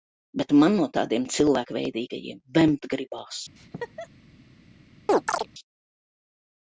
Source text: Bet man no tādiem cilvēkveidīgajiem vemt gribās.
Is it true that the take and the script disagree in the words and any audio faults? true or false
true